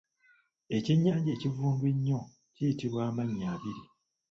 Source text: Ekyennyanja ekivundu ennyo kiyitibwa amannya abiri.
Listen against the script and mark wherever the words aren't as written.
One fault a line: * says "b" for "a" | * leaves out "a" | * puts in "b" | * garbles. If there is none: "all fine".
all fine